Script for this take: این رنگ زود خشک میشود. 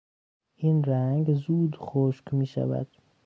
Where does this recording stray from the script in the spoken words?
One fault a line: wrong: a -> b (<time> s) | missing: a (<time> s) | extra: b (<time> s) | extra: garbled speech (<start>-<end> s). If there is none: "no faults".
no faults